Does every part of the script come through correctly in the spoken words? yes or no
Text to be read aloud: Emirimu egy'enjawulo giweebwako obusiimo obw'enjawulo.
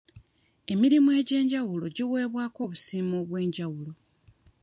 yes